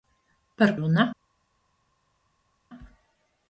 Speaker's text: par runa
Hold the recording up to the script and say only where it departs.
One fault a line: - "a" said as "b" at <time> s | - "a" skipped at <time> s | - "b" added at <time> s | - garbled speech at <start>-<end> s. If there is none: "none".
none